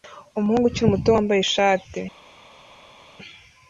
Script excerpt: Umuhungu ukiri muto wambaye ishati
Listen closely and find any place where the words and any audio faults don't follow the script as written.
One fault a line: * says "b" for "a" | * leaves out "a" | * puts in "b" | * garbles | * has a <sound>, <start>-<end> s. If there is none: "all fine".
all fine